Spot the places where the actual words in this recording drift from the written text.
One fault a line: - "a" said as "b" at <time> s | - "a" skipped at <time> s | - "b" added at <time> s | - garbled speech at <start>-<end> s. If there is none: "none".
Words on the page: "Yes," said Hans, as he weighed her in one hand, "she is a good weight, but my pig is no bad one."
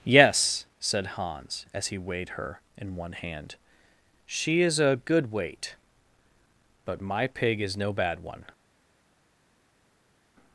none